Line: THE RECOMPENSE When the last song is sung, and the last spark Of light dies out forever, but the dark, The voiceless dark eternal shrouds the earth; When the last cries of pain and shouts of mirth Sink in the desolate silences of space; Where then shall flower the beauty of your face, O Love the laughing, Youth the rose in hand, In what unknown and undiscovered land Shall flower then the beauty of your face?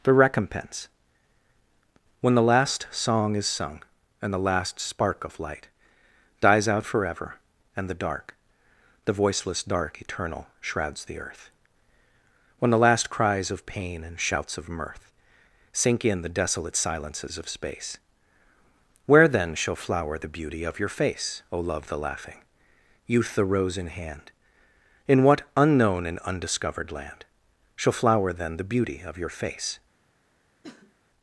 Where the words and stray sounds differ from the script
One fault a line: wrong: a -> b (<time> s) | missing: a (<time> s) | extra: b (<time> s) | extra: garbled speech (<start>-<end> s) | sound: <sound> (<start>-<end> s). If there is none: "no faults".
wrong: but -> and (7.8 s)
sound: cough (30.6-30.9 s)